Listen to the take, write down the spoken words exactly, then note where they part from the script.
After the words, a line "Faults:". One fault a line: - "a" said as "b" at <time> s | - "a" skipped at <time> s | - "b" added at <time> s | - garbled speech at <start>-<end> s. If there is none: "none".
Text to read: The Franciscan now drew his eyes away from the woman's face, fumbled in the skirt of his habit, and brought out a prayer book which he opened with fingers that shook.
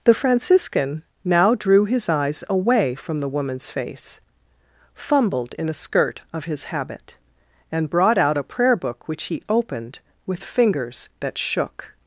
The Franciscan now drew his eyes away from the woman's face, fumbled in a skirt of his habit, and brought out a prayer book which he opened with fingers that shook.
Faults:
- "the" said as "a" at 5.7 s